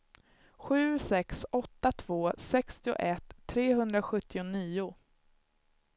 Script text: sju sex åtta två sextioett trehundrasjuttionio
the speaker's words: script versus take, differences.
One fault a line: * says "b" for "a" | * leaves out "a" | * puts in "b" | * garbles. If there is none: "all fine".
all fine